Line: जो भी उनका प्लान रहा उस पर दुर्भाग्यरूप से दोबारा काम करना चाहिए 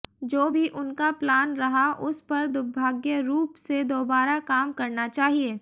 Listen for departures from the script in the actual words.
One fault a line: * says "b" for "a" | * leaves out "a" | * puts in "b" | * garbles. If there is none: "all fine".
all fine